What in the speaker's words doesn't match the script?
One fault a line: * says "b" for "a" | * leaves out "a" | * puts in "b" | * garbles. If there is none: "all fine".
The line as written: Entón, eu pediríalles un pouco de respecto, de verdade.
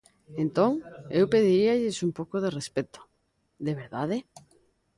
all fine